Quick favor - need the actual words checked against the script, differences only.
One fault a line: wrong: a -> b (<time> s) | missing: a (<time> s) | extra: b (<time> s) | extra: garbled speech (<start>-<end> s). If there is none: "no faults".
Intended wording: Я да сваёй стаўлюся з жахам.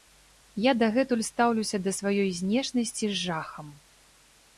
extra: дагэтуль стаўлюся (0.8 s)
wrong: стаўлюся -> знешнасці (2.4 s)